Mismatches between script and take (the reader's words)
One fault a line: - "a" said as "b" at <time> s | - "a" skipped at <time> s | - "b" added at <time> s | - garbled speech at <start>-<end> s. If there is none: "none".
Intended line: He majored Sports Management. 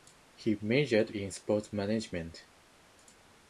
- "in" added at 1.1 s